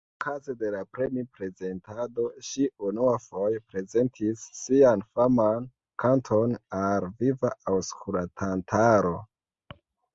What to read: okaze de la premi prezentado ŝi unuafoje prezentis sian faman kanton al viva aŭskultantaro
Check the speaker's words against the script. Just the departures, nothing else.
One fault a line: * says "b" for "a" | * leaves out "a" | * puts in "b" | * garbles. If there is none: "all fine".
all fine